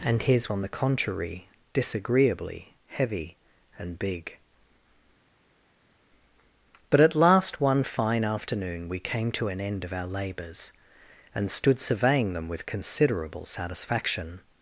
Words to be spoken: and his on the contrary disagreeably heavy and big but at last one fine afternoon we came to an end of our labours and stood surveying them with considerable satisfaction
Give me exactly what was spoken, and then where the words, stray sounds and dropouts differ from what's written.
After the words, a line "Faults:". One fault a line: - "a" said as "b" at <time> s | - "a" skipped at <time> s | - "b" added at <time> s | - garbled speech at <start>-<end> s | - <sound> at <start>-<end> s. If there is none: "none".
and his on the contrary disagreeably heavy and big but at last one fine afternoon we came to an end of our labours and stood surveying them with considerable satisfaction
Faults:
none